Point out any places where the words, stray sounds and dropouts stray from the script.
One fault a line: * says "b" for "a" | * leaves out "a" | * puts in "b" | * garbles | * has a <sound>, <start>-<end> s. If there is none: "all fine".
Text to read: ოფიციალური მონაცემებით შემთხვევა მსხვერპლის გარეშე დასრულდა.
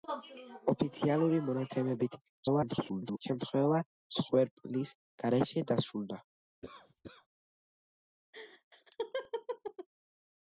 * garbles
* has a cough, 6.6-7.3 s
* has a laugh, 8.3-9.9 s